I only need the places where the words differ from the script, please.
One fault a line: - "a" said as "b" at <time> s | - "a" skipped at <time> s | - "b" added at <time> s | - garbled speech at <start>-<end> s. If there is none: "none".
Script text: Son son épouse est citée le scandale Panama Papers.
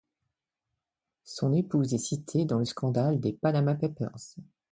- "son" skipped at 1.5 s
- "dans" added at 2.5 s
- "des" added at 3.2 s